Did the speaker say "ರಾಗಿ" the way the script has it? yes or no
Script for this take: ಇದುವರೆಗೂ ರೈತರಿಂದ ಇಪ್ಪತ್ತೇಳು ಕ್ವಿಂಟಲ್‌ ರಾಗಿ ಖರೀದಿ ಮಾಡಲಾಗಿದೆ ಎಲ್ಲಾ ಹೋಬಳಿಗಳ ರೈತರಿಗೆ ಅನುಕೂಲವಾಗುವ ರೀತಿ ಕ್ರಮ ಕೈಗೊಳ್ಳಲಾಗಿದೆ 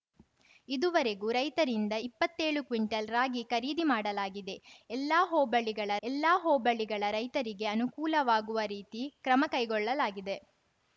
yes